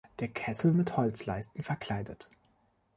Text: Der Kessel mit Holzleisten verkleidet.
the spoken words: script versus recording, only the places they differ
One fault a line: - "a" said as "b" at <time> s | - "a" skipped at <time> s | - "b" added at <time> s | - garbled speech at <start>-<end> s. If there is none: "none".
none